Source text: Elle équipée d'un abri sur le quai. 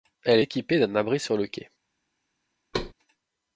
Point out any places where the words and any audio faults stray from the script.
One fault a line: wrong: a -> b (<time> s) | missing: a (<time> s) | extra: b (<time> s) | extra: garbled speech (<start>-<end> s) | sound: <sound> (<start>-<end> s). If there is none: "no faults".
sound: thud (2.7-2.9 s)